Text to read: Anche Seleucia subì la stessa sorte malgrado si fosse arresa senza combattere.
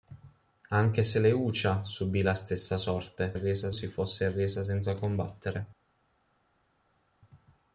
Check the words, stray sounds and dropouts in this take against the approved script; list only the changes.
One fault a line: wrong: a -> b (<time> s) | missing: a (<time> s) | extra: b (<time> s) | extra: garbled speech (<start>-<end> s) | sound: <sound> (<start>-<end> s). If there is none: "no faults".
wrong: malgrado -> arresa (3.3 s)